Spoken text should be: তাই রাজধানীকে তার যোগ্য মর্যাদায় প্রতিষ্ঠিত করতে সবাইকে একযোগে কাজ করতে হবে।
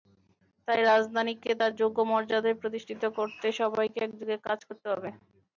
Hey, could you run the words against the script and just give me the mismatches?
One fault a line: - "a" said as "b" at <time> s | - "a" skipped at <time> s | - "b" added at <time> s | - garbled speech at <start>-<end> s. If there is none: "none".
none